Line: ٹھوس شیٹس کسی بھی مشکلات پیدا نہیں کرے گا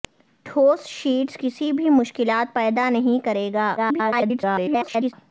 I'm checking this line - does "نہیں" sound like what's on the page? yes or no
yes